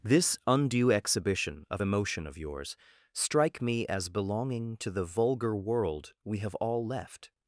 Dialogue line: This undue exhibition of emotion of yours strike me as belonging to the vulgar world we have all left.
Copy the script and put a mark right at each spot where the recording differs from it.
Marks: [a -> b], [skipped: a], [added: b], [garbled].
This undue exhibition of emotion of yours strike me as belonging to the vulgar world we have all left.